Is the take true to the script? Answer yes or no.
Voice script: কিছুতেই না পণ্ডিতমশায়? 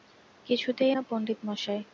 yes